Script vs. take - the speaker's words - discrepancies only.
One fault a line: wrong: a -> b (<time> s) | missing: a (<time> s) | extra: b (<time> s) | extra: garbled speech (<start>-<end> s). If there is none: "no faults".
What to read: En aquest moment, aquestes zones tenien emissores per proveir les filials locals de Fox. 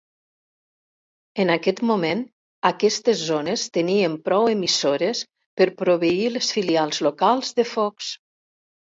extra: prou (4.3 s)